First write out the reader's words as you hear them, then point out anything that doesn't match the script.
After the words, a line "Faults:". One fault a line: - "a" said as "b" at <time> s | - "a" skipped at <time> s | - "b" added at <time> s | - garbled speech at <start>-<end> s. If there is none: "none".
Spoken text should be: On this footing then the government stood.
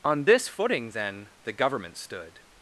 On this footing then the government stood.
Faults:
none